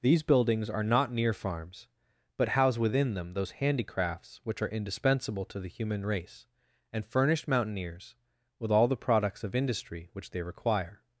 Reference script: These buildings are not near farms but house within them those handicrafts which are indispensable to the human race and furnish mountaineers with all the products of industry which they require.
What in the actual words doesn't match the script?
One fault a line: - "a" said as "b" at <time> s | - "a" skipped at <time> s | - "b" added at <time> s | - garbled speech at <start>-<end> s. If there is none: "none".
none